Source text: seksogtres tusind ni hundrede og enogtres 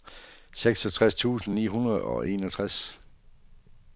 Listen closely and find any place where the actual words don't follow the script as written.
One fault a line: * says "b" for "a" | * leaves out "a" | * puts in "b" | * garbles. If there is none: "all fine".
all fine